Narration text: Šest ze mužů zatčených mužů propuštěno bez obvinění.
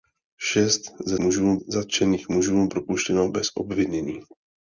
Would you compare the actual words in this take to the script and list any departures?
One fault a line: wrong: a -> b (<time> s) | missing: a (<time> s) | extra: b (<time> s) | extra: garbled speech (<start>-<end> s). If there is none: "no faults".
no faults